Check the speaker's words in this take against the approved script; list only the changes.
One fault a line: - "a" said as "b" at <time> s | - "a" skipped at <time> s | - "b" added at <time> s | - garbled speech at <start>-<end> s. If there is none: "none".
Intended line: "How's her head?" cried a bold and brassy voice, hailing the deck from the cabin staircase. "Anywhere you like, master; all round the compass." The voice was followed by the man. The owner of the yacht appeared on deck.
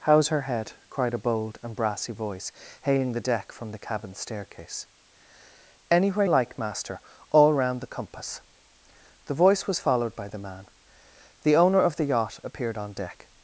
- "you" skipped at 6.2 s